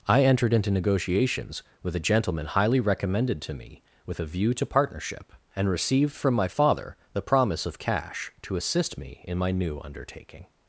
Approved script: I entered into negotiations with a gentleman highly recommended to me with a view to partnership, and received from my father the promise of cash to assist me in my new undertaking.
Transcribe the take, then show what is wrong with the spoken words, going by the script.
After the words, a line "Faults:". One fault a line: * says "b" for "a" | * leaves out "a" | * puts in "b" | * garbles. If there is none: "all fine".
I entered into negotiations with a gentleman highly recommended to me with a view to partnership, and received from my father the promise of cash to assist me in my new undertaking.
Faults:
all fine